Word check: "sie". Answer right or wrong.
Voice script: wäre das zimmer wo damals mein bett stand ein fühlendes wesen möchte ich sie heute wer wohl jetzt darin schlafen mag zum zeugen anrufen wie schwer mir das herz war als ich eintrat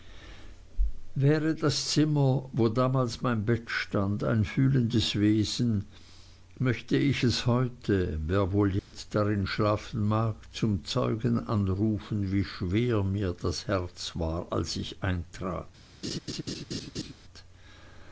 wrong